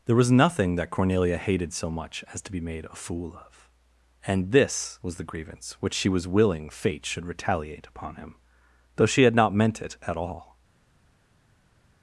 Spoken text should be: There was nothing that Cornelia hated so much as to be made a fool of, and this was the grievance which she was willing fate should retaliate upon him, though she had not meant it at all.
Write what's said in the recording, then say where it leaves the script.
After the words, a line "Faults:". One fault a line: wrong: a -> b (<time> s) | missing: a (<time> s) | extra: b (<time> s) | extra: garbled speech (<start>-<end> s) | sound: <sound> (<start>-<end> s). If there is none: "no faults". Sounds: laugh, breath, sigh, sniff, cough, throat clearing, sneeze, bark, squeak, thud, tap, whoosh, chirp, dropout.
There was nothing that Cornelia hated so much as to be made a fool of, and this was the grievance which she was willing fate should retaliate upon him, though she had not meant it at all.
Faults:
no faults